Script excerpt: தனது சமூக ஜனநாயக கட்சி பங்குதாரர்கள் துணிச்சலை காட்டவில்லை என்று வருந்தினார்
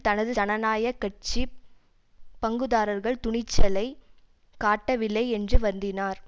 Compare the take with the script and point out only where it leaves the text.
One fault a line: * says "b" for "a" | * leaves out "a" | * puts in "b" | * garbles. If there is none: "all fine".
* leaves out "சமூக"